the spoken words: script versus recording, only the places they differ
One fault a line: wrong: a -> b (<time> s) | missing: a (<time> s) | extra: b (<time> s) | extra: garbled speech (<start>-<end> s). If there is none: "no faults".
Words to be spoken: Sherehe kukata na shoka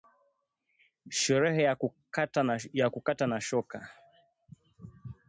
extra: ya (2.7 s)